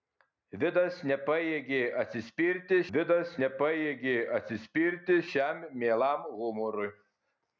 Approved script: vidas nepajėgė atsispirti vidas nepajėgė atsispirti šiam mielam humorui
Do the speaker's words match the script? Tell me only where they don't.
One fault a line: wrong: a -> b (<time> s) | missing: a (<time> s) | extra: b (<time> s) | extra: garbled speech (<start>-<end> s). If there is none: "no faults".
no faults